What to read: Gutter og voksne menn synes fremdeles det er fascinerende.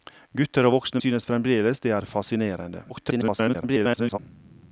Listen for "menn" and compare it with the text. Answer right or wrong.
wrong